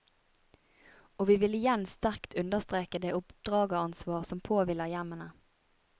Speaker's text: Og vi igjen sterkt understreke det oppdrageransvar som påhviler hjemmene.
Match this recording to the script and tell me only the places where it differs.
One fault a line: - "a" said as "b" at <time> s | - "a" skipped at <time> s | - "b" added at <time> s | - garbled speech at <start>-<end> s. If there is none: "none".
- "vil" added at 1.4 s